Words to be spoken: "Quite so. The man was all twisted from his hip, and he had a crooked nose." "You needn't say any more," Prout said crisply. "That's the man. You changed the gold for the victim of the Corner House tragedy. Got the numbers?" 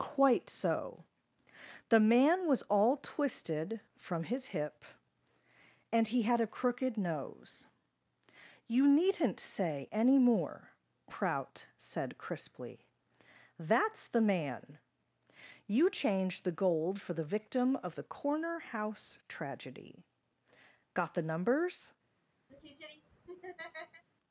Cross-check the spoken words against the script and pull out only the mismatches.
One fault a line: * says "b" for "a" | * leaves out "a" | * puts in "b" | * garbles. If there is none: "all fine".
all fine